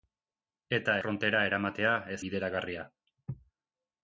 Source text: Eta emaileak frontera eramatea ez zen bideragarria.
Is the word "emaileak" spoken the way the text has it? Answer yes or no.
no